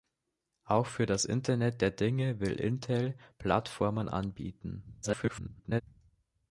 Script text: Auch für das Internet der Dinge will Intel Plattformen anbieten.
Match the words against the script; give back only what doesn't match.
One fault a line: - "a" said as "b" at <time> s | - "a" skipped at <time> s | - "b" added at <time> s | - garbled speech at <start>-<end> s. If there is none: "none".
- garbled speech at 5.0-5.8 s